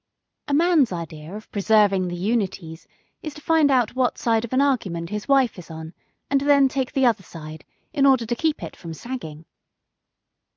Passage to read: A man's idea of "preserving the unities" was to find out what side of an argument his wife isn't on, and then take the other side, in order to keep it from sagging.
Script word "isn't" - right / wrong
wrong